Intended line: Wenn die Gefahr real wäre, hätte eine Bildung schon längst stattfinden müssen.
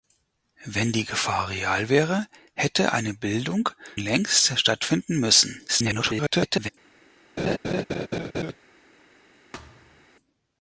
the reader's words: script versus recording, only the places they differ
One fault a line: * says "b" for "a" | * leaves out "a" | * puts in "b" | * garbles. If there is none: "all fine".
* leaves out "schon"
* garbles